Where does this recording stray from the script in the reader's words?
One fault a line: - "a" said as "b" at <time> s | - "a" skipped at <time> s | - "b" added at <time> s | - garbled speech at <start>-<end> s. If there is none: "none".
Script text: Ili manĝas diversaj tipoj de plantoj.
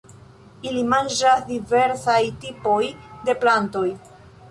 none